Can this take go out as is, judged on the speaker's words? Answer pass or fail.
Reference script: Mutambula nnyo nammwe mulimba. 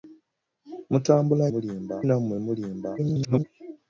fail